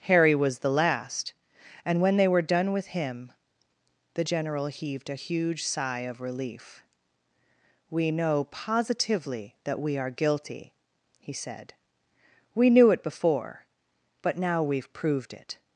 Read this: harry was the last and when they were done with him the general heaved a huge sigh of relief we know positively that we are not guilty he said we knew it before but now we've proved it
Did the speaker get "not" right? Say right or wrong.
wrong